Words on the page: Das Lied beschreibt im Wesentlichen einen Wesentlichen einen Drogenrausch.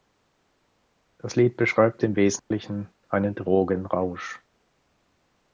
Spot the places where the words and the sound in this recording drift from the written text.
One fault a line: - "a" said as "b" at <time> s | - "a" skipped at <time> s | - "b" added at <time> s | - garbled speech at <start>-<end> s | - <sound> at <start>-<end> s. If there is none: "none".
- dropout at 2.4-2.5 s
- "Wesentlichen einen" skipped at 3.4 s